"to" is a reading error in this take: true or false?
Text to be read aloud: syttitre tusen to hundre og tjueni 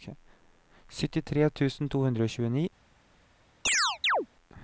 false